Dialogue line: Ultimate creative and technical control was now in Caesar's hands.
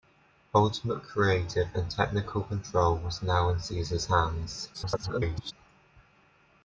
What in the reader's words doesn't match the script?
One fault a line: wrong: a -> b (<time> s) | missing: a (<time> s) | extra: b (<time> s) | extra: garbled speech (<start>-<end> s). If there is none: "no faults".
extra: garbled speech (4.7-5.5 s)